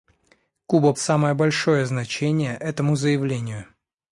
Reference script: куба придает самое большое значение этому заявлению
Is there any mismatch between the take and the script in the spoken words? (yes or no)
yes